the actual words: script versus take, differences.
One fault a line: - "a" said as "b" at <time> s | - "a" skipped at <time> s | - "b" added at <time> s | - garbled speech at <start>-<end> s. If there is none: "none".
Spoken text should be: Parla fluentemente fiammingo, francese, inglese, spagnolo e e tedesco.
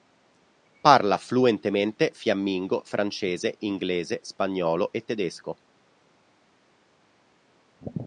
- "e" skipped at 5.0 s